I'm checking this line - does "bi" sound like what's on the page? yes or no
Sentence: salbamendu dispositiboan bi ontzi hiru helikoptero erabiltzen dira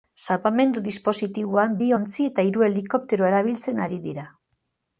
yes